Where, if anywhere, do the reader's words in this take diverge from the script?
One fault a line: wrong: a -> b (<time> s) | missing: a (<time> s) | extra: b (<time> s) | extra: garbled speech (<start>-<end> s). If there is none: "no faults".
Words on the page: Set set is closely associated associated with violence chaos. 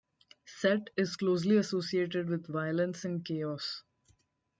missing: set (0.9 s)
missing: associated (2.3 s)
extra: and (3.1 s)